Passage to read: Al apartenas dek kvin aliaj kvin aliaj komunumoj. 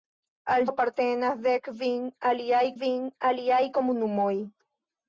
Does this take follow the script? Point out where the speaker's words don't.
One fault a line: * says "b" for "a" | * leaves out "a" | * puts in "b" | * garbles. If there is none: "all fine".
all fine